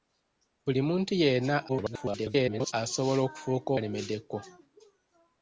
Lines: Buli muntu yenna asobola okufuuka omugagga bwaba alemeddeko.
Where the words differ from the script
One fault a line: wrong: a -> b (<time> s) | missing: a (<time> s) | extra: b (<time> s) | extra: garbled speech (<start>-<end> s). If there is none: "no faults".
extra: garbled speech (1.7-2.7 s)
missing: omugagga bwaba (3.7 s)